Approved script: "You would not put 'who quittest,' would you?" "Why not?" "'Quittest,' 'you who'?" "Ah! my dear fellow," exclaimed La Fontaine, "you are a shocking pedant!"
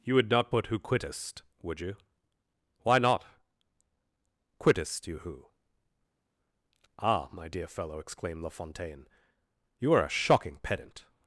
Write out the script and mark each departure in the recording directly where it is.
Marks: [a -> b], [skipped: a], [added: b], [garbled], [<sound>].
"You would not put 'who quittest,' would you?" "Why not?" "'Quittest,' 'you who'?" "Ah! my dear fellow," exclaimed La Fontaine, "you are a shocking pedant!"